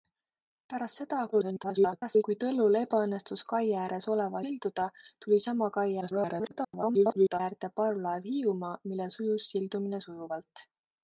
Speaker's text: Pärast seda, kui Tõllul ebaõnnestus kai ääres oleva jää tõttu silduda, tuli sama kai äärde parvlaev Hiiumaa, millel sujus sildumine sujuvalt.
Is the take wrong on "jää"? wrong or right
wrong